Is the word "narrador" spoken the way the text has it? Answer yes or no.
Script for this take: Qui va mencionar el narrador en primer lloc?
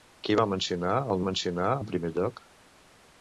no